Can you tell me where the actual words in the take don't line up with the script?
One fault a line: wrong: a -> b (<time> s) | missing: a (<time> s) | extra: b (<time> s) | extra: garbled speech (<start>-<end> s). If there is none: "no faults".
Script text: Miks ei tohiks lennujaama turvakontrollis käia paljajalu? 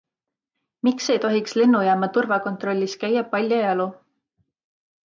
no faults